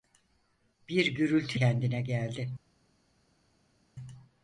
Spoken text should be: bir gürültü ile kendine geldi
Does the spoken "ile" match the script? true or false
false